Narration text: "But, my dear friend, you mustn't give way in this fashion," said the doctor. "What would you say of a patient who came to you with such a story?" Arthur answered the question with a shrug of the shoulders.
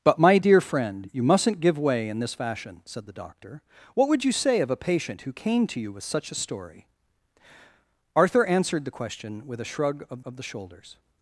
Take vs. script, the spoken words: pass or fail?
fail